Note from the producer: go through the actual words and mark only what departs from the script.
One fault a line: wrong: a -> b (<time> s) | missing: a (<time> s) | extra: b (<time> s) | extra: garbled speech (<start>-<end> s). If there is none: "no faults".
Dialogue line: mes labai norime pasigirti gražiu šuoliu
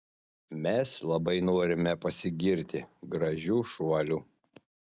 no faults